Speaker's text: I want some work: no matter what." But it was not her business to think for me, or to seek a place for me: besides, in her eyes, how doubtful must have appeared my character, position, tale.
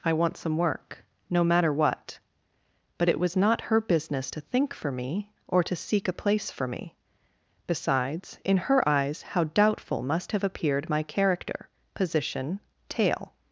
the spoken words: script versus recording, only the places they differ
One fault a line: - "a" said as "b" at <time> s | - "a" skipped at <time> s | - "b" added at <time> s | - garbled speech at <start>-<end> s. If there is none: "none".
none